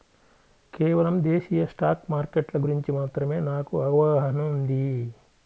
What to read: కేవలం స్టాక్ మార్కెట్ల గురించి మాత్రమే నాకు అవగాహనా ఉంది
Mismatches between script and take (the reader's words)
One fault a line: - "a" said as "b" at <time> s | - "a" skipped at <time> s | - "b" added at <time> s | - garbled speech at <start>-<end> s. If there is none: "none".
- "దేశీయ" added at 1.2 s